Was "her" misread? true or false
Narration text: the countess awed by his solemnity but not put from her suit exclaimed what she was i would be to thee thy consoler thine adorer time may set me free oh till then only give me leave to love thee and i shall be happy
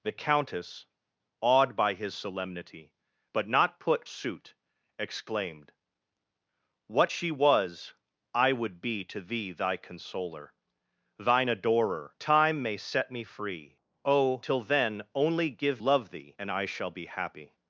true